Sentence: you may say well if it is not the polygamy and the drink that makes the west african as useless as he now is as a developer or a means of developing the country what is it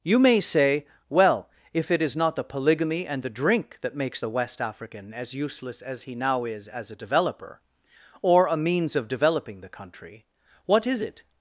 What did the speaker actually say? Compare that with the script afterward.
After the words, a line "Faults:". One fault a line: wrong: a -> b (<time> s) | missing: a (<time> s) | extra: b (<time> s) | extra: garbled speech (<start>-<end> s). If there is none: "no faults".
you may say well if it is not the polygamy and the drink that makes the west african as useless as he now is as a developer or a means of developing the country what is it
Faults:
no faults